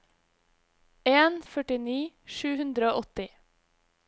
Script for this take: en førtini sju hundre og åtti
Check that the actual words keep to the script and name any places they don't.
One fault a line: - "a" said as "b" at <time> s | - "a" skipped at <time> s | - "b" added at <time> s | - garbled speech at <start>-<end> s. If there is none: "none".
none